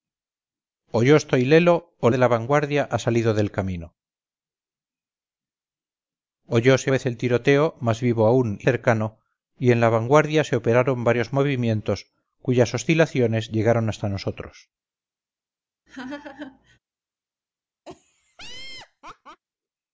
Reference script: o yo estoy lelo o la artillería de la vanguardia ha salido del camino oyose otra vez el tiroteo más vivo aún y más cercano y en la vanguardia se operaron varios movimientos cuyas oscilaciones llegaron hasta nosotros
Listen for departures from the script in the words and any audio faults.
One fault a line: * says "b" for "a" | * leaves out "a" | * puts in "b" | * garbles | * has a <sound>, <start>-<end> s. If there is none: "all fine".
* leaves out "la artillería"
* leaves out "otra"
* leaves out "más"
* has a laugh, 15.9-16.8 s
* has a laugh, 17.9-19.4 s